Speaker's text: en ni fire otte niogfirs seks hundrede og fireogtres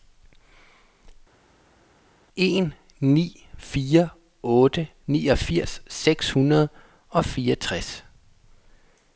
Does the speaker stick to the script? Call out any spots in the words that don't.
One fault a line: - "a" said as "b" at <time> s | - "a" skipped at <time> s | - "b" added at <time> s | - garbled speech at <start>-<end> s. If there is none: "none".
none